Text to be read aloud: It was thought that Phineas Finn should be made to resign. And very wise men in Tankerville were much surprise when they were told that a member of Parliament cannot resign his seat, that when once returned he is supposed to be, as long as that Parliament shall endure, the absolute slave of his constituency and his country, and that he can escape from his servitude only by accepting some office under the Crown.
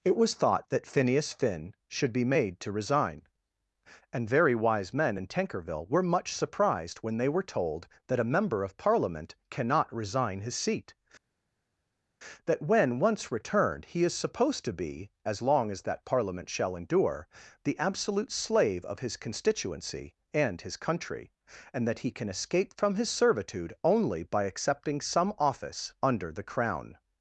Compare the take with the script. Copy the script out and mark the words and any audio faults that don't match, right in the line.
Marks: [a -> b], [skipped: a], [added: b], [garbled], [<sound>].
It was thought that Phineas Finn should be made to resign. And very wise men in Tankerville were much [surprise -> surprised] when they were told that a member of Parliament cannot resign his seat, that when once returned he is supposed to be, as long as that Parliament shall endure, the absolute slave of his constituency and his country, and that he can escape from his servitude only by accepting some office under the Crown.